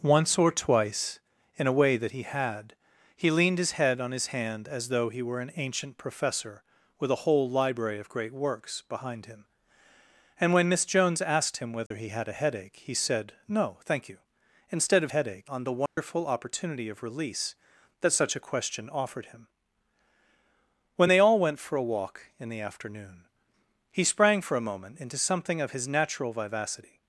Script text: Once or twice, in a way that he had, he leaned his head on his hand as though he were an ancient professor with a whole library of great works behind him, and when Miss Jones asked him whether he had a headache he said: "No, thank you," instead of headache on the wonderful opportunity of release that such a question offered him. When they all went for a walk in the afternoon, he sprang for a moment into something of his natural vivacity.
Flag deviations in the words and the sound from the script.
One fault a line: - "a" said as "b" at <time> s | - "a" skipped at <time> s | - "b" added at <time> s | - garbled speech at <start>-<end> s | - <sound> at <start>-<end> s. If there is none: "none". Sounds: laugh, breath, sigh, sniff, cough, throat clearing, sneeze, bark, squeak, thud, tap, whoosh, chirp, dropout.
- dropout at 11.9-11.9 s
- dropout at 15.9-16.0 s